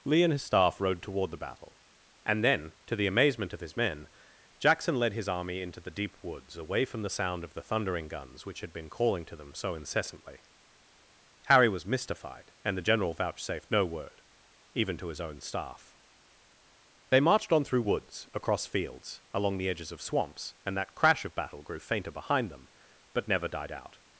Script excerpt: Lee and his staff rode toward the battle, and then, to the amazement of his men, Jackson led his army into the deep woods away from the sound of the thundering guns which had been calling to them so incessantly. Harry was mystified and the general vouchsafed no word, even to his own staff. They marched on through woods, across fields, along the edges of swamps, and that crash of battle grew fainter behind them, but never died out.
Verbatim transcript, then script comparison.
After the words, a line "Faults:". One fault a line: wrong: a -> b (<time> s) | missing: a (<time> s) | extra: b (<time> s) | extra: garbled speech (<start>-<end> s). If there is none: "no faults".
Lee and his staff rode toward the battle, and then, to the amazement of his men, Jackson led his army into the deep woods away from the sound of the thundering guns which had been calling to them so incessantly. Harry was mystified and the general vouchsafed no word, even to his own staff. They marched on through woods, across fields, along the edges of swamps, and that crash of battle grew fainter behind them, but never died out.
Faults:
no faults